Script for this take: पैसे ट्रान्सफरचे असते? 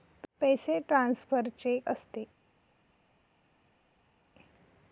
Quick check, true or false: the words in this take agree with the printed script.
true